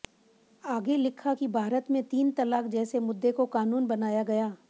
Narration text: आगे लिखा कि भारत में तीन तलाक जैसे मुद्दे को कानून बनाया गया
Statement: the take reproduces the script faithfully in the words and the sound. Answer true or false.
true